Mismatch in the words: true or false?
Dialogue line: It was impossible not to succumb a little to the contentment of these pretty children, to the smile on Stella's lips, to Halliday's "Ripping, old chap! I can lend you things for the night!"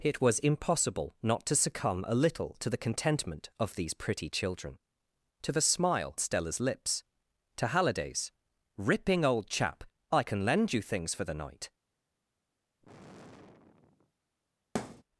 true